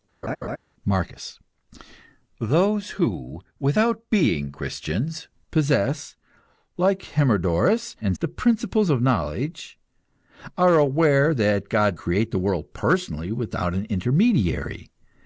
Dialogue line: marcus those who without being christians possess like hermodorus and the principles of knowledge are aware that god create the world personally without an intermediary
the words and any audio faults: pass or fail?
fail